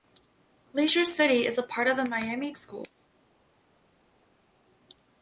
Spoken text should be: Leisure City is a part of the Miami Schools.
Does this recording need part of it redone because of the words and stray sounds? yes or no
no